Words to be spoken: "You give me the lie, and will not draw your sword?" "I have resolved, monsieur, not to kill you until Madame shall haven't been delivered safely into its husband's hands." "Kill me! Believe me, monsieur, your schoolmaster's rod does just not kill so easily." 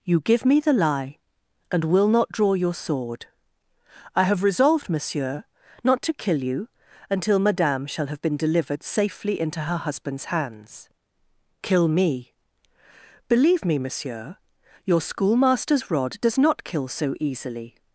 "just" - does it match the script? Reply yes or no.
no